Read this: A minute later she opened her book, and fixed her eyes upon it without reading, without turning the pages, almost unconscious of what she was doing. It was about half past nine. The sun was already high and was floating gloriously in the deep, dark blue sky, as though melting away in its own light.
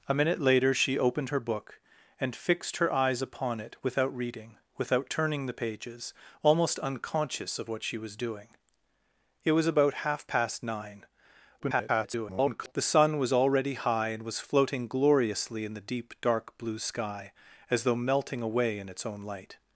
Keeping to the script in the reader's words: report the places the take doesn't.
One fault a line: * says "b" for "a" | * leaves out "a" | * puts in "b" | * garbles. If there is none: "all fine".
* garbles